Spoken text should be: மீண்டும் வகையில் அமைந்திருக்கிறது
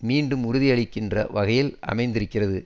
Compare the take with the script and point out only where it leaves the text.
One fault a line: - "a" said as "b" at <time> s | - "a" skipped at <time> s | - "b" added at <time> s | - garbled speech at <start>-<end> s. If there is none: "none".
- "உறுதியளிக்கின்ற" added at 0.4 s